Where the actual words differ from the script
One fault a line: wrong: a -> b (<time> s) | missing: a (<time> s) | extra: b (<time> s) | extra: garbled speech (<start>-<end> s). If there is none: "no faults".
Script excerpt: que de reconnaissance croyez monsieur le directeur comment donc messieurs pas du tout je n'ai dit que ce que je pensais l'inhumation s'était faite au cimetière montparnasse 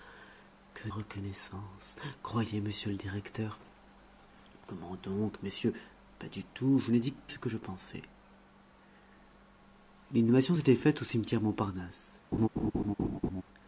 missing: de (0.9 s)
missing: que (7.1 s)